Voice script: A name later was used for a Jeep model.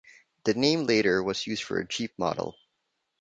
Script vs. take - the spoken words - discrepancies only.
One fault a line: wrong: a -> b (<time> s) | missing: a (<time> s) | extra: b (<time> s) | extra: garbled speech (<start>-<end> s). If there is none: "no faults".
wrong: A -> The (0.5 s)